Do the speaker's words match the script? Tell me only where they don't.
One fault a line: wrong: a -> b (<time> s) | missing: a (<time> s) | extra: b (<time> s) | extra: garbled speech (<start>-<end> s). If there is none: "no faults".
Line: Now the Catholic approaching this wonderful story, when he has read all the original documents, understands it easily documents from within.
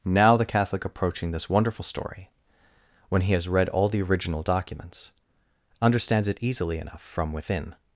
wrong: documents -> enough (6.8 s)